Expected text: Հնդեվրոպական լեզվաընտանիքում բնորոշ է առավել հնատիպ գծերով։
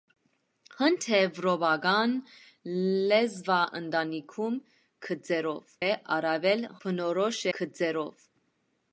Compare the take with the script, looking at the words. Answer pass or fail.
fail